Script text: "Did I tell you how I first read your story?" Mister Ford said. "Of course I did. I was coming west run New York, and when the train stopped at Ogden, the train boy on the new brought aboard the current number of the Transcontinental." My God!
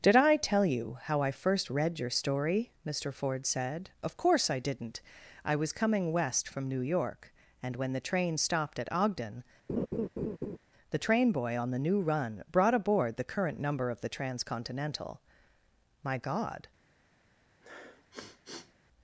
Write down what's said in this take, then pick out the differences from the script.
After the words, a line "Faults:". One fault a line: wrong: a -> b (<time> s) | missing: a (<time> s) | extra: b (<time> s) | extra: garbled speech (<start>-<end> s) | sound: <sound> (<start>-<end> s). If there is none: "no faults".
"Did I tell you how I first read your story?" Mister Ford said. "Of course I didn't. I was coming west from New York, and when the train stopped at Ogden, the train boy on the new run brought aboard the current number of the Transcontinental." My God!
Faults:
wrong: did -> didn't (4.6 s)
wrong: run -> from (6.5 s)
sound: laugh (9.7-10.6 s)
extra: run (12.0 s)
sound: sniff (17.6-18.7 s)